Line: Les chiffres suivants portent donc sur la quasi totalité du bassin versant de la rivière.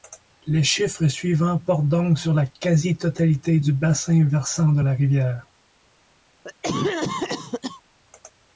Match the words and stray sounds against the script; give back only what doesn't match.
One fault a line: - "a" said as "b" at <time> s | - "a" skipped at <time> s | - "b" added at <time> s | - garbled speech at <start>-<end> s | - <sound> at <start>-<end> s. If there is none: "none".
- cough at 6.4-7.8 s